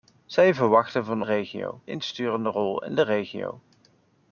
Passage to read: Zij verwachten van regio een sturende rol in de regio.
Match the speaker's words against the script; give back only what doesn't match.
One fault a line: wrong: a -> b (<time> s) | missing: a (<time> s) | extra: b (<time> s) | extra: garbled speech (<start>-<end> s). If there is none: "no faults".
no faults